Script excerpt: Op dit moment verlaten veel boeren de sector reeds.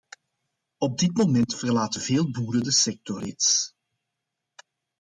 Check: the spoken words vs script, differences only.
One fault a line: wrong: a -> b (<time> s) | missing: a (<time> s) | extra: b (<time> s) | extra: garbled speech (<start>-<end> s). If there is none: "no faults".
no faults